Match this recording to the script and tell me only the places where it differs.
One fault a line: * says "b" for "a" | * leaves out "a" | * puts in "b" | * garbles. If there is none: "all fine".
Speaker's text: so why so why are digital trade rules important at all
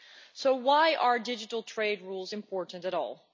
* leaves out "so why"